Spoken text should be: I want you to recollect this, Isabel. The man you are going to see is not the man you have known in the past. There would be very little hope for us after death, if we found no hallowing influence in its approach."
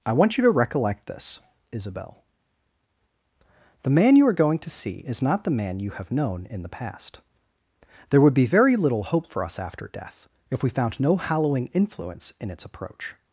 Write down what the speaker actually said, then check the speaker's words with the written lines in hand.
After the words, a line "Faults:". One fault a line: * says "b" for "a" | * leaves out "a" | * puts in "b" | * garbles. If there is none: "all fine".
I want you to recollect this, Isabel. The man you are going to see is not the man you have known in the past. There would be very little hope for us after death, if we found no hallowing influence in its approach."
Faults:
all fine